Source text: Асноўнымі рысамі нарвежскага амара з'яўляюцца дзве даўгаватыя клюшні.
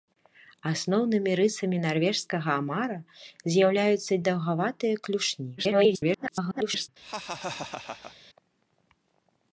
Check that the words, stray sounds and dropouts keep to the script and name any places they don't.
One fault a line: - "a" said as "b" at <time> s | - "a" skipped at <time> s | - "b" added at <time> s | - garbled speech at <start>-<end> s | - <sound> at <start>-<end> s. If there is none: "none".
- "дзве" skipped at 4.1 s
- garbled speech at 5.6-6.9 s
- laugh at 7.0-8.2 s